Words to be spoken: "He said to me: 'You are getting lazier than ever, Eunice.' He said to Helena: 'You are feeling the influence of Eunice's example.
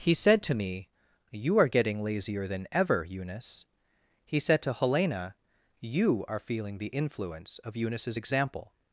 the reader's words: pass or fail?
pass